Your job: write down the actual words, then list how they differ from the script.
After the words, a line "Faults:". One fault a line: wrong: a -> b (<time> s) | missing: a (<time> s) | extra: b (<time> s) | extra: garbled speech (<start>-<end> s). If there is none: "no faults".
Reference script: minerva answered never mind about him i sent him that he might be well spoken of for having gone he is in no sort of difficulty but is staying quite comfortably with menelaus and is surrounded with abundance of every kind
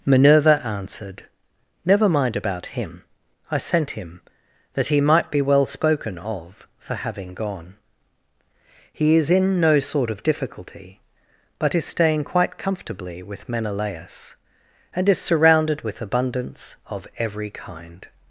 minerva answered never mind about him i sent him that he might be well spoken of for having gone he is in no sort of difficulty but is staying quite comfortably with menelaus and is surrounded with abundance of every kind
Faults:
no faults